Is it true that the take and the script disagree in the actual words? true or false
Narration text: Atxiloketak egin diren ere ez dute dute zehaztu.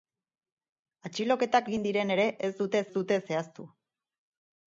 false